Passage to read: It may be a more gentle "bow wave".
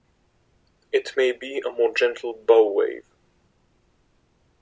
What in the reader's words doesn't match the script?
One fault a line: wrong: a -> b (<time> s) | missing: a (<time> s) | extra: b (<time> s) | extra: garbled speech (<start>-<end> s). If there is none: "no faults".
no faults